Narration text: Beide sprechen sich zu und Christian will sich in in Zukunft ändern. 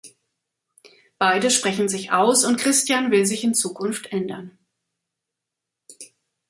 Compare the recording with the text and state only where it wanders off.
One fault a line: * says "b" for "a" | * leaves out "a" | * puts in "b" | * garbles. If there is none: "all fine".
* says "aus" for "zu"
* leaves out "in"